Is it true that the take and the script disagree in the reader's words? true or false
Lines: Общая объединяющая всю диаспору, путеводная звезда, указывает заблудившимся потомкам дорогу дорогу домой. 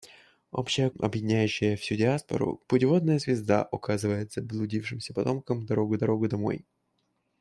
false